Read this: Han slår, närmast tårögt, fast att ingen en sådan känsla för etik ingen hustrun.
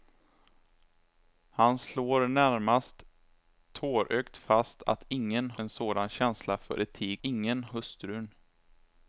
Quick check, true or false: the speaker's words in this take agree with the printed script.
true